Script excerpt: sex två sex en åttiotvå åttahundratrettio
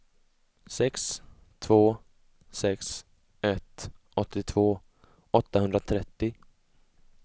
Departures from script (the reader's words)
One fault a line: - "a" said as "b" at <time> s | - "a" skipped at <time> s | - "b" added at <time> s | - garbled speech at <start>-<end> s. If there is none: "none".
- "en" said as "ett" at 3.4 s